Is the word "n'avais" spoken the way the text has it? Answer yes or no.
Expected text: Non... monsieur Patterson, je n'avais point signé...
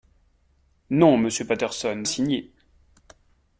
no